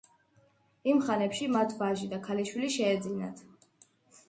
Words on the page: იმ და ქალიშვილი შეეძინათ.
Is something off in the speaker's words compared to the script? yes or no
yes